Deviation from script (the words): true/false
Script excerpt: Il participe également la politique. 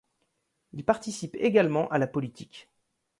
true